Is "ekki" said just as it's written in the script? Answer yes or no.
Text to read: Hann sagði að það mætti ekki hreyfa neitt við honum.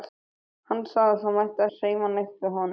no